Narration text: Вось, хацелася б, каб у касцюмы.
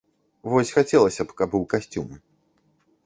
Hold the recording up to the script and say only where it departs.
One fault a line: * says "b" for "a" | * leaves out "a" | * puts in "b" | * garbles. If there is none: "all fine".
all fine